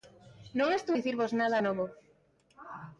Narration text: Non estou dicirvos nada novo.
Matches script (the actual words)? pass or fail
pass